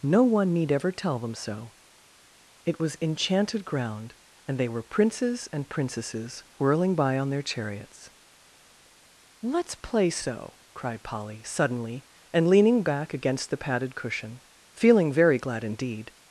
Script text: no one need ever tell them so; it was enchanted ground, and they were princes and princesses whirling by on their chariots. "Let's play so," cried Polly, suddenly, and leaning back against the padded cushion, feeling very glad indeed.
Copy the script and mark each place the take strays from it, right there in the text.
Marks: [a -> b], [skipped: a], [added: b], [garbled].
no one need ever tell them so; it was enchanted ground, and they were princes and princesses whirling by on their chariots. "Let's play so," cried Polly, suddenly, and leaning back against the padded cushion, feeling very glad indeed.